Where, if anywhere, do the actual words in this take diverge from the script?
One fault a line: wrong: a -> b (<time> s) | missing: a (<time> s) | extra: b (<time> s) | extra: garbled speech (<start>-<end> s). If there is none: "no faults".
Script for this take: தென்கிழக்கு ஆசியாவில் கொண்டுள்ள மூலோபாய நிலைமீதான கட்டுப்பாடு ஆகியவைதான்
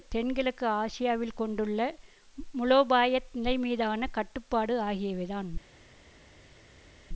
no faults